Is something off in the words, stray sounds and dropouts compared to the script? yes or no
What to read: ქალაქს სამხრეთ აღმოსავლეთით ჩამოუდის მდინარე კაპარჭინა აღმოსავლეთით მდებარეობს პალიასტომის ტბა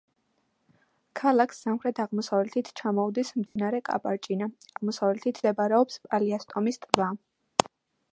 yes